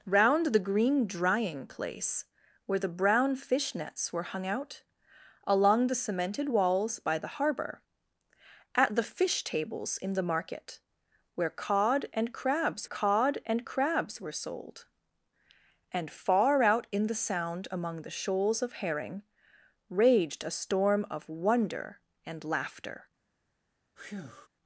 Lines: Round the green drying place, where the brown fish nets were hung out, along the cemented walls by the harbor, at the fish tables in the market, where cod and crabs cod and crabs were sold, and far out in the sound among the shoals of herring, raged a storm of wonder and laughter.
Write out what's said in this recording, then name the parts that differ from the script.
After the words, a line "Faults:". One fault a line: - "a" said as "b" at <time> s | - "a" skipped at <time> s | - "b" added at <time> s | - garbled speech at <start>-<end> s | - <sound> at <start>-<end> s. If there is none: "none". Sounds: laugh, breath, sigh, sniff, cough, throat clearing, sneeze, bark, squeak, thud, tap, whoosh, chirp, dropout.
Round the green drying place, where the brown fish nets were hung out, along the cemented walls by the harbor, at the fish tables in the market, where cod and crabs cod and crabs were sold, and far out in the sound among the shoals of herring, raged a storm of wonder and laughter.
Faults:
- breath at 24.0-24.5 s